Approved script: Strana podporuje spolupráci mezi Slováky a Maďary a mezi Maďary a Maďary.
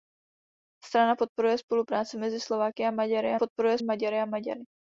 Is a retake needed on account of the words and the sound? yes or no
yes